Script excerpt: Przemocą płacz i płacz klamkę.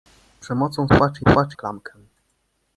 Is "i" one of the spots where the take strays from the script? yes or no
no